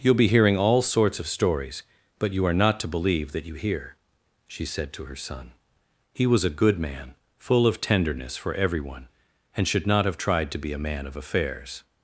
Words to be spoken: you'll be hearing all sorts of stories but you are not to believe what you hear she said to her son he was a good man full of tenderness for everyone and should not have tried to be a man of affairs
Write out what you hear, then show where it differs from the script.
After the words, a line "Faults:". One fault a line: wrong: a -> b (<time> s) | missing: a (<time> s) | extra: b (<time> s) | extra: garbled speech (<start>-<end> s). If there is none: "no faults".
you'll be hearing all sorts of stories but you are not to believe that you hear she said to her son he was a good man full of tenderness for everyone and should not have tried to be a man of affairs
Faults:
wrong: what -> that (3.3 s)